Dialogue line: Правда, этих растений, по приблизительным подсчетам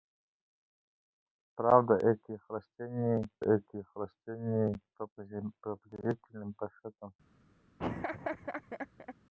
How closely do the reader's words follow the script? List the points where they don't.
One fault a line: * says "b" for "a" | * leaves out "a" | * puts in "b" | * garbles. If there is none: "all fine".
* puts in "этих растений"